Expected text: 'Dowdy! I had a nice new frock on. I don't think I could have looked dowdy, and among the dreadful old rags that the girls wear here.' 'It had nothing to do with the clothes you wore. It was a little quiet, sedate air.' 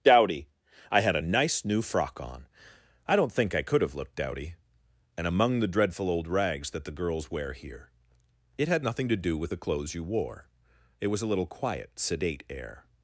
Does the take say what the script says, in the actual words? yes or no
yes